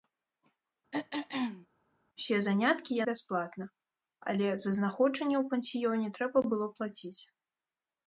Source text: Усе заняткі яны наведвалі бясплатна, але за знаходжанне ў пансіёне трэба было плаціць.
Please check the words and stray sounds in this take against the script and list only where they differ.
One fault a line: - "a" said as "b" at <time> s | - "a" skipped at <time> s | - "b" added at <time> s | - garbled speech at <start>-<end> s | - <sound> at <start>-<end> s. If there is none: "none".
- throat clearing at 0.9-1.7 s
- "яны наведвалі" skipped at 3.0 s